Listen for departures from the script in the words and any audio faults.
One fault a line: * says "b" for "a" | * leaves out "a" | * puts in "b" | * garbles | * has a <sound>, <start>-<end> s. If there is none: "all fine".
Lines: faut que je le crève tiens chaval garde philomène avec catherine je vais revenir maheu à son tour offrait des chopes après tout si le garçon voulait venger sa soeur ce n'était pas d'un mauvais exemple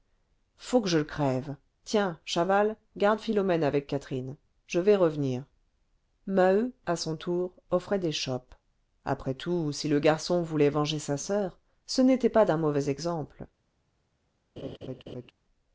* has a laugh, 14.6-15.3 s